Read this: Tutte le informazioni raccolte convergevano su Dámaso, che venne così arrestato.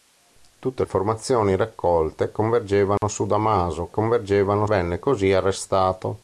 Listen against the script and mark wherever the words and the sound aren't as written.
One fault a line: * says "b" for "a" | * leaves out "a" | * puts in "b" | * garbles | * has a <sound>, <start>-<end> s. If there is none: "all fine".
* leaves out "le"
* has a dropout, 3.0-3.0 s
* says "convergevano" for "che"